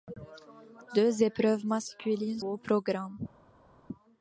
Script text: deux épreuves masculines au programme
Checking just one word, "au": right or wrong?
right